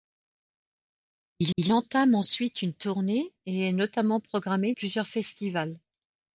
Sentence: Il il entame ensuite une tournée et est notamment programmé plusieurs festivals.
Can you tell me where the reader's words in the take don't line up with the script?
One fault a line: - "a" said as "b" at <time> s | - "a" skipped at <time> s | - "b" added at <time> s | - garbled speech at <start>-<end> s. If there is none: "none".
none